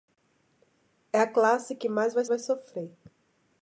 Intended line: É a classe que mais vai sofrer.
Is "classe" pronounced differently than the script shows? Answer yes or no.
no